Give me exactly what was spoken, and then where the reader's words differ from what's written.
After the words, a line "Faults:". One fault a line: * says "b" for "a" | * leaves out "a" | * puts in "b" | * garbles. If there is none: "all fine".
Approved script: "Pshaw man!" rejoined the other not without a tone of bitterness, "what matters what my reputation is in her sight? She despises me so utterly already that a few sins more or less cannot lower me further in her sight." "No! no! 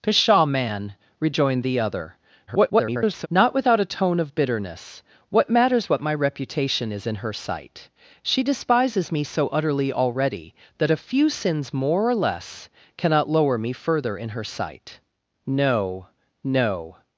"Pshaw man!" rejoined the other [garbled] not without a tone of bitterness, "what matters what my reputation is in her sight? She despises me so utterly already that a few sins more or less cannot lower me further in her sight." "No! no!
Faults:
* garbles